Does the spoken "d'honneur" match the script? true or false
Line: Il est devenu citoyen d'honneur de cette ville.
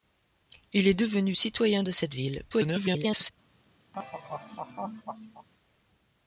false